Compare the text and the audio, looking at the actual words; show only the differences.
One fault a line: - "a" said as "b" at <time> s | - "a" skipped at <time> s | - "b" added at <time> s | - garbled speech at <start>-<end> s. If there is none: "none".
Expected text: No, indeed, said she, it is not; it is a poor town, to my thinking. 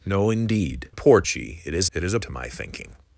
- "said" said as "poor" at 0.9 s
- "not" skipped at 1.9 s
- "poor town" skipped at 2.2 s